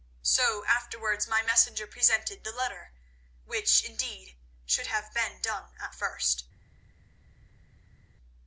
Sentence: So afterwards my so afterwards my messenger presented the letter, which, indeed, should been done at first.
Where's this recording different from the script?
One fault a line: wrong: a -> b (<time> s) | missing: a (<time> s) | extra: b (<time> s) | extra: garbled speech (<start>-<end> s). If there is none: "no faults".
missing: so afterwards my (1.4 s)
extra: have (4.9 s)